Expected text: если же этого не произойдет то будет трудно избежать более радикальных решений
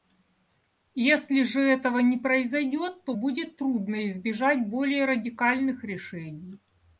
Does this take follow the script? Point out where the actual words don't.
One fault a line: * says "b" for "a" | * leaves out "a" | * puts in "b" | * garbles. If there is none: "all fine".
all fine